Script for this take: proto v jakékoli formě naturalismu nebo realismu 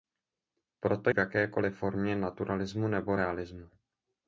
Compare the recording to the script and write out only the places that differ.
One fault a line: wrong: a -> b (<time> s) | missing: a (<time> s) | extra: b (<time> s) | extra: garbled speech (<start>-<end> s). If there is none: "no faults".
no faults